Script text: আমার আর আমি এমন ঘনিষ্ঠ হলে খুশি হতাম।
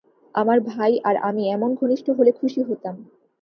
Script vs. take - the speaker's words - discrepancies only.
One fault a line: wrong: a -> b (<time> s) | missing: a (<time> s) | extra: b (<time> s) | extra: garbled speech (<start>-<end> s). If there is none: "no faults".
extra: ভাই (0.7 s)